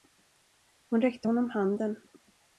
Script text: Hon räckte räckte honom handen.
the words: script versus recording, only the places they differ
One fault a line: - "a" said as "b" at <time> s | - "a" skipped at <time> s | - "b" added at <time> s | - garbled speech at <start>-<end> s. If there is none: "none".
- "räckte" skipped at 1.3 s